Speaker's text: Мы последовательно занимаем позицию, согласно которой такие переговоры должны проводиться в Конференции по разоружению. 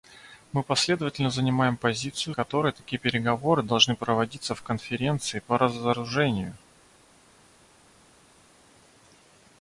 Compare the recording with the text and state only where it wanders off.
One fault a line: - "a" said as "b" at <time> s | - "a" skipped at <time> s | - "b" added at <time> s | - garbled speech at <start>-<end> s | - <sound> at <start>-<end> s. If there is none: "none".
- "согласно" skipped at 2.3 s